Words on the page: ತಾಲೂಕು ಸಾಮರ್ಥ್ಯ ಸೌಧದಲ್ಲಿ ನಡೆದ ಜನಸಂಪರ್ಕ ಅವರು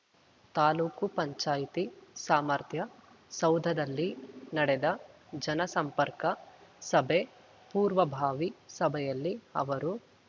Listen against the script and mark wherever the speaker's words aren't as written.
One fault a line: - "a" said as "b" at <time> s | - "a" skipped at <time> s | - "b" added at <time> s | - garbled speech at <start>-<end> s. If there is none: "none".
- "ಪಂಚಾಯ್ತಿ" added at 1.1 s
- "ಸಭೆ ಪೂರ್ವಭಾವಿ ಸಭೆಯಲ್ಲಿ" added at 6.8 s